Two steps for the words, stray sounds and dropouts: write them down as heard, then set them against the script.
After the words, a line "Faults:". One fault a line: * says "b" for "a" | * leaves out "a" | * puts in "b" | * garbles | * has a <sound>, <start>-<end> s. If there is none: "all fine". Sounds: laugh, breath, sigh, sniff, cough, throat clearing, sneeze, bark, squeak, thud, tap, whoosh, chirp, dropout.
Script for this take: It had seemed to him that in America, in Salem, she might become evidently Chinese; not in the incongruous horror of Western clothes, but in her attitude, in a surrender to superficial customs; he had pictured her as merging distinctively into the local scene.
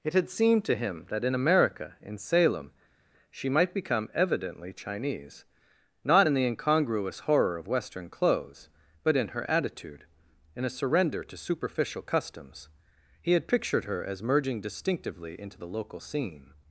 It had seemed to him that in America, in Salem, she might become evidently Chinese; not in the incongruous horror of Western clothes, but in her attitude, in a surrender to superficial customs; he had pictured her as merging distinctively into the local scene.
Faults:
all fine